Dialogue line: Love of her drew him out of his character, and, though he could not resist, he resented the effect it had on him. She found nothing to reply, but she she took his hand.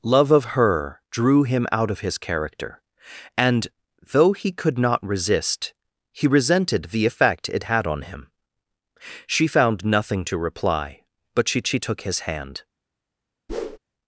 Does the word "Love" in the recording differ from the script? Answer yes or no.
no